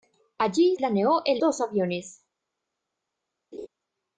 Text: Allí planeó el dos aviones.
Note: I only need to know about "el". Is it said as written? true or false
true